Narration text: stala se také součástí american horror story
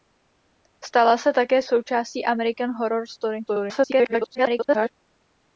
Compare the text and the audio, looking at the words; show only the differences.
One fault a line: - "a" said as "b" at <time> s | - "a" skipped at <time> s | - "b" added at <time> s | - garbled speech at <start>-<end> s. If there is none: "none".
- garbled speech at 3.5-4.9 s